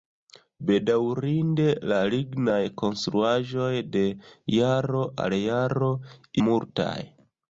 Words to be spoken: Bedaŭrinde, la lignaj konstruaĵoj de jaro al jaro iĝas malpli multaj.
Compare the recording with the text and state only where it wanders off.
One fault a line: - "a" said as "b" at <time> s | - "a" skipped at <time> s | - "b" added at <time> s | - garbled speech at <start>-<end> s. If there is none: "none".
- "iĝas malpli" skipped at 5.9 s